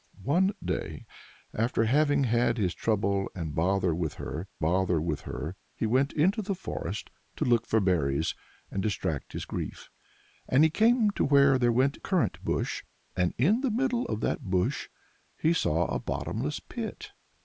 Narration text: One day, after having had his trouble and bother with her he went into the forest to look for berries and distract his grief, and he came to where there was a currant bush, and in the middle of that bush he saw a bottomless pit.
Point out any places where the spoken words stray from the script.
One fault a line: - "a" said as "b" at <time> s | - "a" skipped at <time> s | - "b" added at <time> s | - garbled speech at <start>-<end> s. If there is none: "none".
- "bother with her" added at 4.6 s
- "was" said as "went" at 11.7 s